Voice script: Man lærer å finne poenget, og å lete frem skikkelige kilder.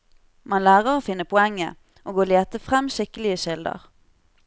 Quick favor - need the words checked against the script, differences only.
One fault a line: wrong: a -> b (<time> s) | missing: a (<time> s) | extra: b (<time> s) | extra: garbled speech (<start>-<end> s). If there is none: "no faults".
no faults